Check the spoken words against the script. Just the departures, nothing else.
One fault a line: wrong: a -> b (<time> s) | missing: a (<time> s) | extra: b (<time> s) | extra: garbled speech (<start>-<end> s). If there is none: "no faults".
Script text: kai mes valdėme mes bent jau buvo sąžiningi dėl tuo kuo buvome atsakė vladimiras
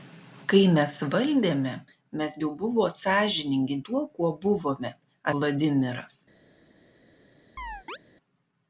missing: bent (2.4 s)
missing: dėl (3.8 s)
missing: atsakė (4.9 s)